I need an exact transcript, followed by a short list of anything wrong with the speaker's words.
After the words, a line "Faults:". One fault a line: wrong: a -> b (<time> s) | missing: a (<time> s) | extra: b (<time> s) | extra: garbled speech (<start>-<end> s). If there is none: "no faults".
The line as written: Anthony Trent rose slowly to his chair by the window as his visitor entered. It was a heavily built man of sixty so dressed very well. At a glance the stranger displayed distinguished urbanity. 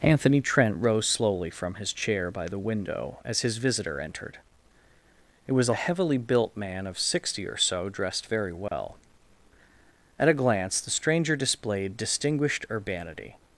Anthony Trent rose slowly from his chair by the window as his visitor entered. It was a heavily built man of sixty or so dressed very well. At a glance the stranger displayed distinguished urbanity.
Faults:
wrong: to -> from (1.5 s)
extra: or (7.4 s)